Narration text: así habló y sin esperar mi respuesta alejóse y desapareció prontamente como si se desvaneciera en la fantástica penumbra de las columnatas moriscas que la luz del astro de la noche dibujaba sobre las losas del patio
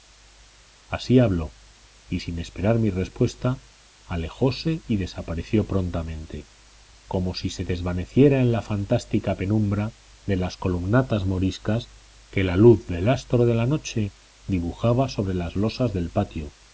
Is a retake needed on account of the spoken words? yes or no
no